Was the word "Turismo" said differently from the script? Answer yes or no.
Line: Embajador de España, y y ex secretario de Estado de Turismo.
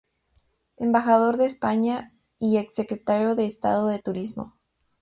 no